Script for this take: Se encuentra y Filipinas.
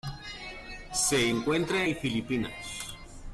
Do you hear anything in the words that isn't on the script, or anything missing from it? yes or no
no